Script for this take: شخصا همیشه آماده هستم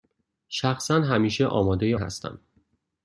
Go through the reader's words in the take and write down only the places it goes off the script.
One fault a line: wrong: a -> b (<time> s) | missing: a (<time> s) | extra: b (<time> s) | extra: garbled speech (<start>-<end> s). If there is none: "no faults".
no faults